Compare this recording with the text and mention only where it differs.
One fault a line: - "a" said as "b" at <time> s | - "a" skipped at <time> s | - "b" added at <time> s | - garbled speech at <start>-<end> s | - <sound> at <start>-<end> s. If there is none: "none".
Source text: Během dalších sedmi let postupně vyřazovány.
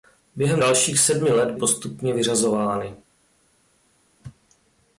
none